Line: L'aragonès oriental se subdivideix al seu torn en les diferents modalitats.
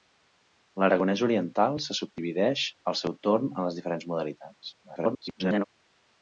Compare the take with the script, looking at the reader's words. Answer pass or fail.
fail